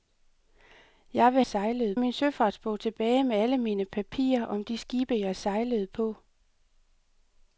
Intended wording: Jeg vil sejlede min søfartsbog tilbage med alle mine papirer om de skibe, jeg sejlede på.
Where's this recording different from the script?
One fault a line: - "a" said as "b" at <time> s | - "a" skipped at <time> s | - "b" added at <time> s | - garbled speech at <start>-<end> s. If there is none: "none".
none